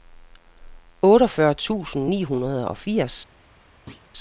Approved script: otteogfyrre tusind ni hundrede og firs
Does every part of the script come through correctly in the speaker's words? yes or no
yes